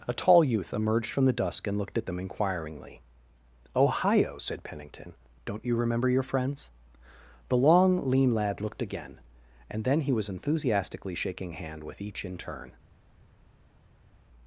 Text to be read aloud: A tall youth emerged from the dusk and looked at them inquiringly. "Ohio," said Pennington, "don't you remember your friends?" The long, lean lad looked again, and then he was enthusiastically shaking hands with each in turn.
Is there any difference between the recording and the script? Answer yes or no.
yes